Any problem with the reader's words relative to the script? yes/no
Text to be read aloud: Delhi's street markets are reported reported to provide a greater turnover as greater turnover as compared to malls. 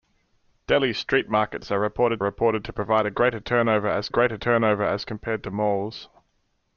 no